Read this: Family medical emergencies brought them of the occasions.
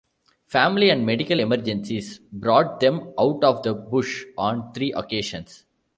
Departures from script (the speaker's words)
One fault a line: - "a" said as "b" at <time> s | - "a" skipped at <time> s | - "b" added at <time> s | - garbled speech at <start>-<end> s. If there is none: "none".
- "and" added at 0.9 s
- "out" added at 3.2 s
- "bush on three" added at 3.8 s